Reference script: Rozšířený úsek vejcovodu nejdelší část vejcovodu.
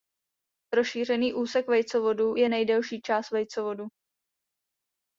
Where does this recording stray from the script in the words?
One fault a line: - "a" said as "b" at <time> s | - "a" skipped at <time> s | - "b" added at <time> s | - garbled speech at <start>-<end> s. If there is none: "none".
- "je" added at 2.4 s